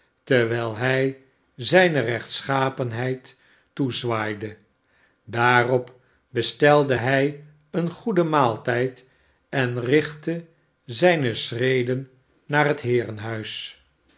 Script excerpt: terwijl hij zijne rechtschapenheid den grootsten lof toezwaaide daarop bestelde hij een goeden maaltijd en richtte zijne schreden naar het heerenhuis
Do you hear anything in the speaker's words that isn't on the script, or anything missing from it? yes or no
yes